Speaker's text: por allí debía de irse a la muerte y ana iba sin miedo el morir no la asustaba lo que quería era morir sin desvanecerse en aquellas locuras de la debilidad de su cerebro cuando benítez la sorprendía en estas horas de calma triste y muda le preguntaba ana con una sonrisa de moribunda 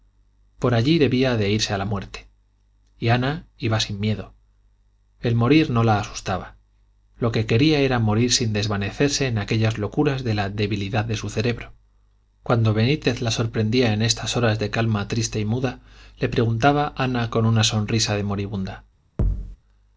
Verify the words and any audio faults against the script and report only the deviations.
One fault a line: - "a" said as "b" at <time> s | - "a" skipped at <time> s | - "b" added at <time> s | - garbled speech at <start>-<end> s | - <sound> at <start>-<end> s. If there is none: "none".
- thud at 19.2-19.6 s